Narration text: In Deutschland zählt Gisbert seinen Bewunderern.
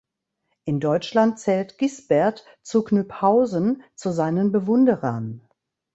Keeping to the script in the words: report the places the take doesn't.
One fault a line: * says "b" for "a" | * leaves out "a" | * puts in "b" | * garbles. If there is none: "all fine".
* puts in "zu Knyphausen zu"